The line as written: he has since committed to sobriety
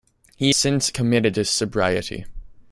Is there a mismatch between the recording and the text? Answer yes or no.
yes